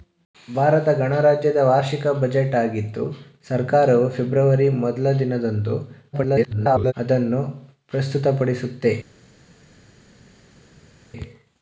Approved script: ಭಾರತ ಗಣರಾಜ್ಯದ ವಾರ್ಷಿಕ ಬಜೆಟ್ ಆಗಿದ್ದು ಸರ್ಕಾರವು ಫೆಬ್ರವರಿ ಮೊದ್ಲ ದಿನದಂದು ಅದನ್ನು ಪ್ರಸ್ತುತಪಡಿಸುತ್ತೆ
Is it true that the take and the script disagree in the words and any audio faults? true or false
true